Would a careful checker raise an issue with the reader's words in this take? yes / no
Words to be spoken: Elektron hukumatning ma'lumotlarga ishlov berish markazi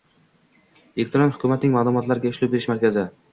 no